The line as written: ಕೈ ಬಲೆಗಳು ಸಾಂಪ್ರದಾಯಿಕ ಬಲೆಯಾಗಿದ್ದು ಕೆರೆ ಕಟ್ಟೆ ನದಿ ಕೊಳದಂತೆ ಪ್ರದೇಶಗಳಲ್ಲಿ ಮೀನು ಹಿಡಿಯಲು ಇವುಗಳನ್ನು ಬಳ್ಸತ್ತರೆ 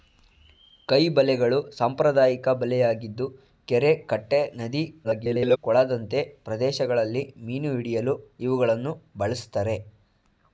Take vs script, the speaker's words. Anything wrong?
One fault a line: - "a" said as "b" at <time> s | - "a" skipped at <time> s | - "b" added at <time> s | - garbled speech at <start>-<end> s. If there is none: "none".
- garbled speech at 5.0-5.6 s